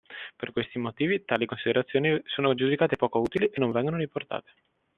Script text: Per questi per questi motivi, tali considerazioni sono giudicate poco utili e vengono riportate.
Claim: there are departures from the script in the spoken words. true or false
true